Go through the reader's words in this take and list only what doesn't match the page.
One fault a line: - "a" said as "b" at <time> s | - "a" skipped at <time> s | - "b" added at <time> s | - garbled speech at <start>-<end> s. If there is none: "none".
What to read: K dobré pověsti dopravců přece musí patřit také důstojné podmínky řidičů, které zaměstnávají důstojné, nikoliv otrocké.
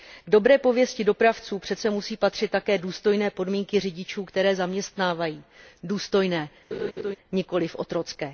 none